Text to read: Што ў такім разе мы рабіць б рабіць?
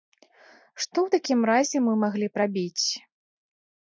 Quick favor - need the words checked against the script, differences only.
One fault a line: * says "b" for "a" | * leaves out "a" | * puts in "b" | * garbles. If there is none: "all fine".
* says "маглі" for "рабіць"